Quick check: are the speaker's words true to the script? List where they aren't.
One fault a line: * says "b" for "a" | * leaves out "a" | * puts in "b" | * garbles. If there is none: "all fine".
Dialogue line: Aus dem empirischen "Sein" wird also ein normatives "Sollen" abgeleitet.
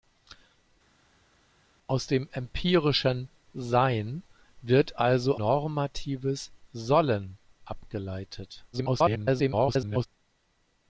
* leaves out "ein"
* garbles